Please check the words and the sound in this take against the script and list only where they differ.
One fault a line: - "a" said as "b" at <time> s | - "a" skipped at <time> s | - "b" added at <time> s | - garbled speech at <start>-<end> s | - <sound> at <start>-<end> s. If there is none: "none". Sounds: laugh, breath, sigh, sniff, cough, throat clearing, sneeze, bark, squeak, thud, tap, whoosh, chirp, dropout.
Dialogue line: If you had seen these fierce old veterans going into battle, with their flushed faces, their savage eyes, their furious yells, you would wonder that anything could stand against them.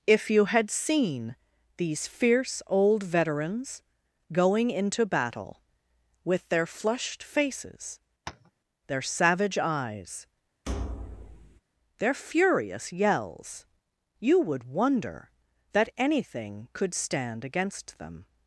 - tap at 8.3-8.5 s
- thud at 10.7-11.6 s